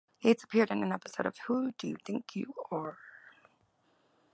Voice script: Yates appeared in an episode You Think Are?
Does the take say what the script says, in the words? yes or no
no